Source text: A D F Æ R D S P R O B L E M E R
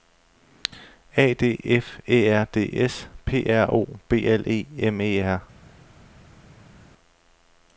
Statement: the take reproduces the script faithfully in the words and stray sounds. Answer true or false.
true